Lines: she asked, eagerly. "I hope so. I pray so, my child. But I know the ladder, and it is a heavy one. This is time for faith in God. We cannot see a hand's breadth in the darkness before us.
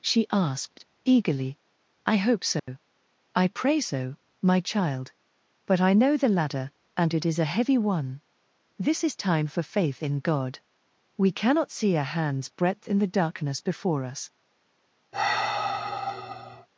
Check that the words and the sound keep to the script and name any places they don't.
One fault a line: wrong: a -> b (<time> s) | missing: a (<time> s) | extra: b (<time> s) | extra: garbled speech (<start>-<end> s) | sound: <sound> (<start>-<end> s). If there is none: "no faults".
sound: dropout (2.6-2.7 s)
sound: sigh (15.1-16.7 s)